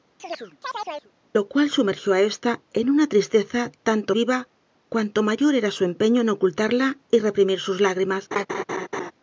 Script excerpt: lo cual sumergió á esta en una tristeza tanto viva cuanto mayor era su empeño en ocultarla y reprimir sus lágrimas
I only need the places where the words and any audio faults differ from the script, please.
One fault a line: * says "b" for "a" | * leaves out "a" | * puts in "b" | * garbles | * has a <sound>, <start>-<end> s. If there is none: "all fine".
* has a chirp, 0.2-1.1 s
* has a laugh, 8.3-9.1 s